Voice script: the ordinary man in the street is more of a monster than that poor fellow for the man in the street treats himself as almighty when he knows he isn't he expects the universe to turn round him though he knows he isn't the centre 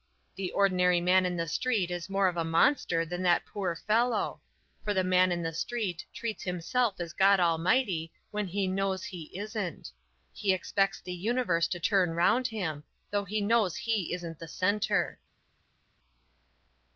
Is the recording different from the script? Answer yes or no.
yes